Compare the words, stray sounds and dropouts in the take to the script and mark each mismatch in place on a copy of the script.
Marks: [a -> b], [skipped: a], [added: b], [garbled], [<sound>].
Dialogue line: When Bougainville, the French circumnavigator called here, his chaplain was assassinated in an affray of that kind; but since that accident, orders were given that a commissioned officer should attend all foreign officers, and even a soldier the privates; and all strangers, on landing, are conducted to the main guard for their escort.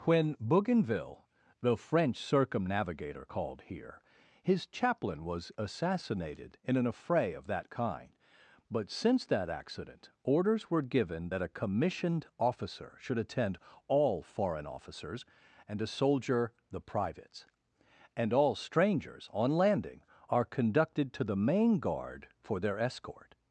When Bougainville, the French circumnavigator called here, his chaplain was assassinated in an affray of that kind; but since that accident, orders were given that a commissioned officer should attend all foreign officers, and [skipped: even] a soldier the privates; and all strangers, on landing, are conducted to the main guard for their escort.